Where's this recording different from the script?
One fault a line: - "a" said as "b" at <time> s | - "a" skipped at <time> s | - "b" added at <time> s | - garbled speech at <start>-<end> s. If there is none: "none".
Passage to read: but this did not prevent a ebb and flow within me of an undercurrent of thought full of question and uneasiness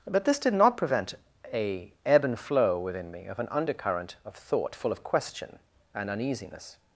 none